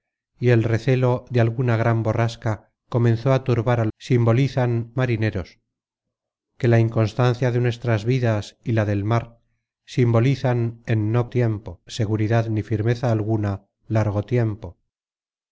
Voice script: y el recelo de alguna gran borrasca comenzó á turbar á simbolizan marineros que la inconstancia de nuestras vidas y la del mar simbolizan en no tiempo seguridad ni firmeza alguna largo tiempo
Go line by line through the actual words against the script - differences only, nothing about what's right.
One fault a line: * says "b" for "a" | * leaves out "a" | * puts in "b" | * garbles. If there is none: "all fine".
all fine